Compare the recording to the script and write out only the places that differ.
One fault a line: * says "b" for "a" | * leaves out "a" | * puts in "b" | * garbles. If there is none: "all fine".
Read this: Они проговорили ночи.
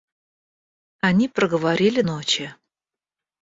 all fine